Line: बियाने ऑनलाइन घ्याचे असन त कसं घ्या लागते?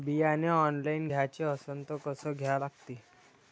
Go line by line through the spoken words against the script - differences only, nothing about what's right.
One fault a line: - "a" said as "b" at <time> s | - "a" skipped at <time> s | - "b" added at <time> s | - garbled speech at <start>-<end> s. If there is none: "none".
none